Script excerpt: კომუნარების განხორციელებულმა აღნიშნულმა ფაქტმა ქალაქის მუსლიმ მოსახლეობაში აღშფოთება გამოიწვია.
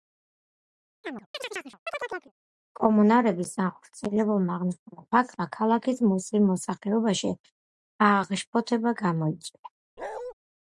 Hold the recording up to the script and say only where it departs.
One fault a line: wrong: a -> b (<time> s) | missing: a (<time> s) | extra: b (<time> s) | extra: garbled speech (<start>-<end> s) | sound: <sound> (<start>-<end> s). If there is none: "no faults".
sound: chirp (1.0-2.3 s)
sound: bark (10.0-10.3 s)